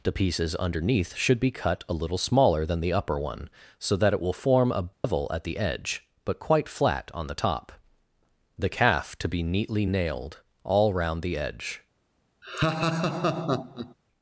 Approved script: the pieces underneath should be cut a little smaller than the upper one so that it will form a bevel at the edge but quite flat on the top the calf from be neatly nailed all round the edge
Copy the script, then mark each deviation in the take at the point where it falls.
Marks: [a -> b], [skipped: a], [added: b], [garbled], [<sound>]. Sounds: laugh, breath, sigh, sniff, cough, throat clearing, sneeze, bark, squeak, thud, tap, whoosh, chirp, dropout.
the pieces underneath should be cut a little smaller than the upper one so that it will form a bevel [dropout] at the edge but quite flat on the top the calf [from -> to] be neatly nailed all round the edge [laugh]